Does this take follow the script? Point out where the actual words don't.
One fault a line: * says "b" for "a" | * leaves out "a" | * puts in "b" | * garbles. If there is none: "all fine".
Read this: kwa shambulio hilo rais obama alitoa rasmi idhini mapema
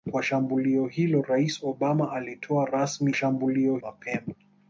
* says "shambulio" for "idhini"